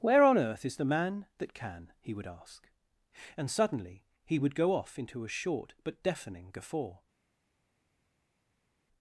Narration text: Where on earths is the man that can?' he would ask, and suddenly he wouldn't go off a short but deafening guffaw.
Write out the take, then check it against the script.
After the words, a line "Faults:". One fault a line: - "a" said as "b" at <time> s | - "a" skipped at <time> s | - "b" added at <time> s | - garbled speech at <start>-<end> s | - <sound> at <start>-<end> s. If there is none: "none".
Where on earth is the man that can?' he would ask, and suddenly he would go off into a short but deafening guffaw.
Faults:
- "earths" said as "earth" at 0.3 s
- "wouldn't" said as "would" at 4.4 s
- "into" added at 5.0 s